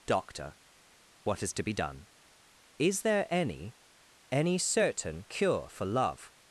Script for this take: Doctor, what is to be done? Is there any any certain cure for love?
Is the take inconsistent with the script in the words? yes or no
no